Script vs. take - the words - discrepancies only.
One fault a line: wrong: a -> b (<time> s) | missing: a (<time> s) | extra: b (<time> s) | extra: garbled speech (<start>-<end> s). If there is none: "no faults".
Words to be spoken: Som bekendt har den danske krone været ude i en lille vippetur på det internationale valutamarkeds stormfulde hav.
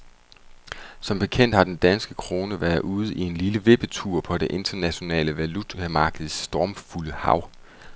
no faults